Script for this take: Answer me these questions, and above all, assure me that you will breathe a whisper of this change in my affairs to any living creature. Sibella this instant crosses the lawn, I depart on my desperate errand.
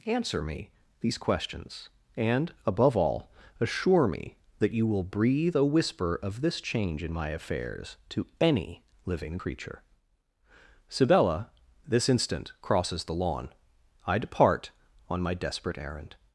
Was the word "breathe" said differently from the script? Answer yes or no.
no